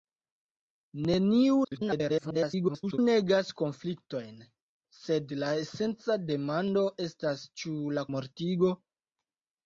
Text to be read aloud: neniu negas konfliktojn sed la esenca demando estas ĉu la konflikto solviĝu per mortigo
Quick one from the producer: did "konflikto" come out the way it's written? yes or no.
no